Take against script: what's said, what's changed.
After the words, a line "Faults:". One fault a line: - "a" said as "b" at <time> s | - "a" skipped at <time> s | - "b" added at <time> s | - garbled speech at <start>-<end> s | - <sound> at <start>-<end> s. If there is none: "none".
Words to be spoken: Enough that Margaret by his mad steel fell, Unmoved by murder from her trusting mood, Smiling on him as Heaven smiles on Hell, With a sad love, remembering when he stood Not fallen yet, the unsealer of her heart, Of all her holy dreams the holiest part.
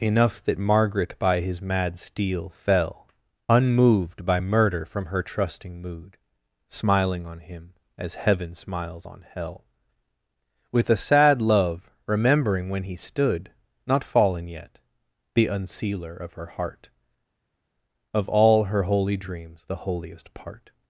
Enough that Margaret by his mad steel fell, Unmoved by murder from her trusting mood, Smiling on him as Heaven smiles on Hell, With a sad love, remembering when he stood Not fallen yet, the unsealer of her heart, Of all her holy dreams the holiest part.
Faults:
none